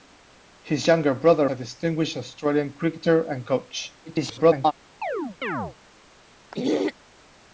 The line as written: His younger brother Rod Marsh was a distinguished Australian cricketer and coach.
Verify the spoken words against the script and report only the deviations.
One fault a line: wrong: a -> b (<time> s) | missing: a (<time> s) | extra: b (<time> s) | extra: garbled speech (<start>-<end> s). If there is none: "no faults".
missing: Rod Marsh was (1.5 s)
extra: garbled speech (4.0-4.7 s)